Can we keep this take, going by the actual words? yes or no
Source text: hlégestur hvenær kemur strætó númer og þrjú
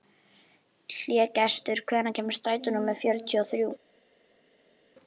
no